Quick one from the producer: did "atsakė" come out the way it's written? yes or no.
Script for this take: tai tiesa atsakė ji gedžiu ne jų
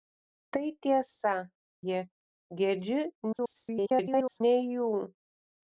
no